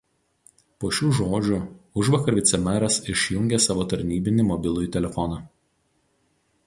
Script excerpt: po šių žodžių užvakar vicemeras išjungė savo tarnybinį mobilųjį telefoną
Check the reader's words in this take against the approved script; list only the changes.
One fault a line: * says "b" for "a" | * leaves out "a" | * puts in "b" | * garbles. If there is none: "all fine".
all fine